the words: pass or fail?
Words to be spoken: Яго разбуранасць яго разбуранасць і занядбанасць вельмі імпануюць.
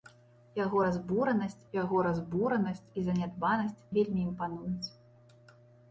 pass